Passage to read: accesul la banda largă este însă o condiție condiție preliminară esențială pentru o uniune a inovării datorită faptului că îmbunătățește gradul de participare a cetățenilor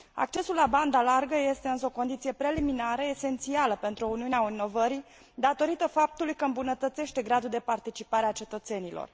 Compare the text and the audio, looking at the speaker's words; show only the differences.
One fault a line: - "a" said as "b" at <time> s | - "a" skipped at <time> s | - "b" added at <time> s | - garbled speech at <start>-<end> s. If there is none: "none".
- "condiție" skipped at 2.3 s